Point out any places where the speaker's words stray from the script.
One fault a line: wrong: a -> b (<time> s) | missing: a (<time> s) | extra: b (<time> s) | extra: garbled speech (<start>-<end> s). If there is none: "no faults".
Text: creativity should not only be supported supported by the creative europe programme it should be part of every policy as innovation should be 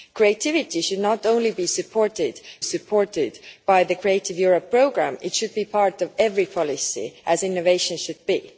no faults